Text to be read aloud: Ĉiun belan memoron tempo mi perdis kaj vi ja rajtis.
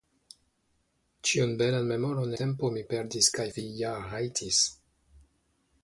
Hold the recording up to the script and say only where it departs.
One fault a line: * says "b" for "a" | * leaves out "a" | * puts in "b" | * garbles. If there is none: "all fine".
all fine